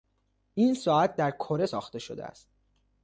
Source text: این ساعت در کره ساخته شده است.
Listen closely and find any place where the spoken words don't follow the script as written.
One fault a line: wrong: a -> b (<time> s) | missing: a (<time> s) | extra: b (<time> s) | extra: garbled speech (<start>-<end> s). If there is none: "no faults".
no faults